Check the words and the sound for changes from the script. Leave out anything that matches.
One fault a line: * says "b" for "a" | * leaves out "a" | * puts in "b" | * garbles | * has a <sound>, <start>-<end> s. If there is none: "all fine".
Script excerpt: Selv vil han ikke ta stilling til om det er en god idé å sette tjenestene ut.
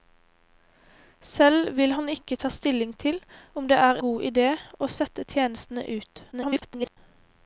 * leaves out "en"
* garbles